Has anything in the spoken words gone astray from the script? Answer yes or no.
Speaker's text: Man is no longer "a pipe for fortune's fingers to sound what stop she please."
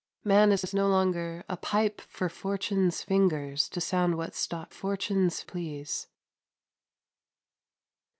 yes